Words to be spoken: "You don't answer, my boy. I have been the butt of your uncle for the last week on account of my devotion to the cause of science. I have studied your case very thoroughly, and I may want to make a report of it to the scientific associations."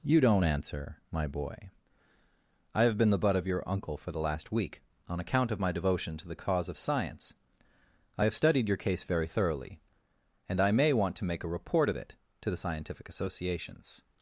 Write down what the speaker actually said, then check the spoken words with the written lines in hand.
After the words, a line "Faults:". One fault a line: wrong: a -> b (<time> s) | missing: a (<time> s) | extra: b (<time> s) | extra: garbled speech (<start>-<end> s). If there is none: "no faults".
"You don't answer, my boy. I have been the butt of your uncle for the last week on account of my devotion to the cause of science. I have studied your case very thoroughly, and I may want to make a report of it to the scientific associations."
Faults:
no faults